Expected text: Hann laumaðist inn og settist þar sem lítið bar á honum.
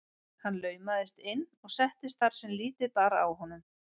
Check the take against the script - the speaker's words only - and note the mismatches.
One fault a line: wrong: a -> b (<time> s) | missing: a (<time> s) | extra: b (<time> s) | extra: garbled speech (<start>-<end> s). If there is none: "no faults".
no faults